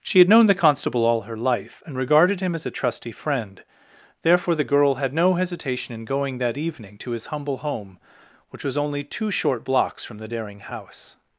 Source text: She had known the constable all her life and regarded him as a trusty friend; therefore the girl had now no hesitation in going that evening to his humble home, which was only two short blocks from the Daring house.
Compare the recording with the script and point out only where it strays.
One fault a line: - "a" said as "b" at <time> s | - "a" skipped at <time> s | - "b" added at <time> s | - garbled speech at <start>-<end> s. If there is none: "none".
- "now" skipped at 5.1 s